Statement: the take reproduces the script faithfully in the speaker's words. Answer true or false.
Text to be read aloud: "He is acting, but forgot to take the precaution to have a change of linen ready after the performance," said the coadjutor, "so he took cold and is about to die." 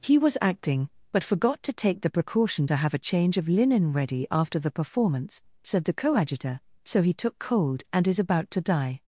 false